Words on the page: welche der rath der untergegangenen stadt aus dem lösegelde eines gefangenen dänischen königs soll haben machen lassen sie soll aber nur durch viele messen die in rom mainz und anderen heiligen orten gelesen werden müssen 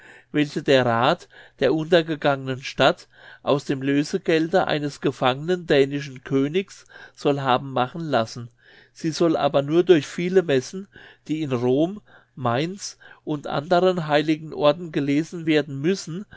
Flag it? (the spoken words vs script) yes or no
no